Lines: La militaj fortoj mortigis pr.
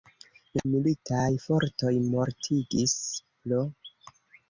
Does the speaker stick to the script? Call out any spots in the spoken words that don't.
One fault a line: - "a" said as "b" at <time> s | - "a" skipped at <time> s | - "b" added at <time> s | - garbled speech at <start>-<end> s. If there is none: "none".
none